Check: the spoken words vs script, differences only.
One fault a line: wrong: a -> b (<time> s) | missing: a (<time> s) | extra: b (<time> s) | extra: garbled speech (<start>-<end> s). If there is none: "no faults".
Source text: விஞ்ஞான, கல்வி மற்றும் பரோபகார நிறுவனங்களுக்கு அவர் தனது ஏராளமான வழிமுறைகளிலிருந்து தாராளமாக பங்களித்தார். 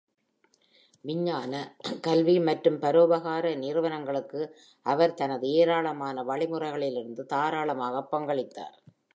no faults